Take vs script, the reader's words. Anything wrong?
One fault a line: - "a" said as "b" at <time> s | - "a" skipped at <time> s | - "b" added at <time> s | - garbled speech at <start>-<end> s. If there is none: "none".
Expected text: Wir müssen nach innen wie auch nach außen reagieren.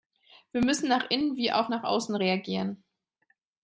none